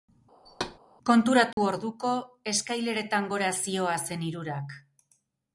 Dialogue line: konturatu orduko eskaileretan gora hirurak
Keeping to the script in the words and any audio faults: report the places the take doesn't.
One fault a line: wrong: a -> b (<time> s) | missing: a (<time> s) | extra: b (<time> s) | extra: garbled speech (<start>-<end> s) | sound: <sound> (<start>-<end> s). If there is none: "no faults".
sound: thud (0.5-0.8 s)
sound: dropout (1.5-1.6 s)
extra: zihoazen (3.6 s)